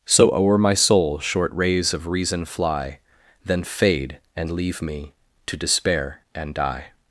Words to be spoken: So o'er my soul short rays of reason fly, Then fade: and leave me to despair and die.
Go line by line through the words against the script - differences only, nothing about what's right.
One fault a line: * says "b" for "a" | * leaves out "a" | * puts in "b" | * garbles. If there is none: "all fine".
all fine